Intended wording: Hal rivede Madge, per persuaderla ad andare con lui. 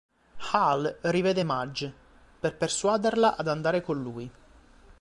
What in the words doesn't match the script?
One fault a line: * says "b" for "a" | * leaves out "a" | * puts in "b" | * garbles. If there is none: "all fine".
all fine